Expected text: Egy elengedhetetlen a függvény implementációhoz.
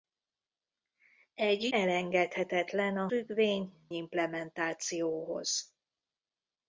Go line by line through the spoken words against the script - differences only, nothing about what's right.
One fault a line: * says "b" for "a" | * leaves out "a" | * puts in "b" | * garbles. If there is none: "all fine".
all fine